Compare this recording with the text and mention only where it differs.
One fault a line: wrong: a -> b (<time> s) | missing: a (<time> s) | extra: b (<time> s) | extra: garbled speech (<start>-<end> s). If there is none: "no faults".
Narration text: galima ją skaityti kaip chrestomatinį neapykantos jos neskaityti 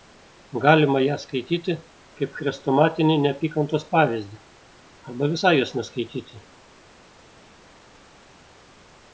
extra: pavyzdį arba visai (4.0 s)